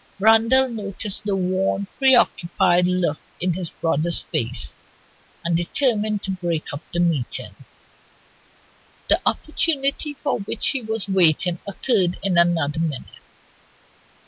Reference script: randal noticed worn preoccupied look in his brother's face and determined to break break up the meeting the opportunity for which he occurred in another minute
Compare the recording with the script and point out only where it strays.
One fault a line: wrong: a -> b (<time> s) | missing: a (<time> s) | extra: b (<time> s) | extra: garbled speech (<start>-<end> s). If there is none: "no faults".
extra: the (1.2 s)
missing: break (6.7 s)
extra: was waiting (10.8 s)